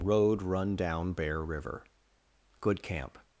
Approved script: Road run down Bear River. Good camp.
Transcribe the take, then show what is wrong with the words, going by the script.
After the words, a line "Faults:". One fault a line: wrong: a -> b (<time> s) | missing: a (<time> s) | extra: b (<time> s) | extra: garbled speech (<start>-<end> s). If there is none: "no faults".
Road run down Bear River. Good camp.
Faults:
no faults